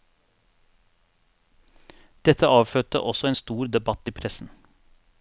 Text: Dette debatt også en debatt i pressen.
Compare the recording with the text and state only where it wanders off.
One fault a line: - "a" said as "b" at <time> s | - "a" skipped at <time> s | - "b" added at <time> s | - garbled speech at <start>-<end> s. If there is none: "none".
- "debatt" said as "avfødte" at 2.5 s
- "stor" added at 3.3 s